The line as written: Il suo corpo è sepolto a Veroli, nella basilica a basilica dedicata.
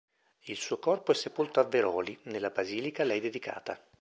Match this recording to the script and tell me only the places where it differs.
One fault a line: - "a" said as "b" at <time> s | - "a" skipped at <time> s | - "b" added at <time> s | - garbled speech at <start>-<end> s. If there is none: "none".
- "basilica" said as "lei" at 3.1 s